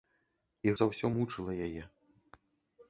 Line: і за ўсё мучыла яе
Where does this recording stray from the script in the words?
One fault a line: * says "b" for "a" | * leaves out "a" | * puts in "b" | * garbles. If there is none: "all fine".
all fine